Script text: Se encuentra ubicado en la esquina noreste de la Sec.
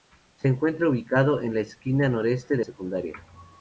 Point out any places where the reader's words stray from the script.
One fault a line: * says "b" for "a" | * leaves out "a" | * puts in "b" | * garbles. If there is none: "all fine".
* leaves out "la"